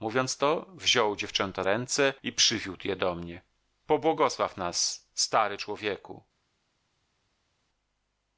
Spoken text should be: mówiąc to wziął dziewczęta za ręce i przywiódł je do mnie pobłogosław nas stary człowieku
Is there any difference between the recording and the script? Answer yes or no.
yes